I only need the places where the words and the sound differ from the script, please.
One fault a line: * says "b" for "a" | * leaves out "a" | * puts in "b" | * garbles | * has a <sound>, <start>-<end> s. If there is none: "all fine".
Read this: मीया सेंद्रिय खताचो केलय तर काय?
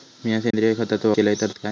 * has a dropout, 0.5-0.5 s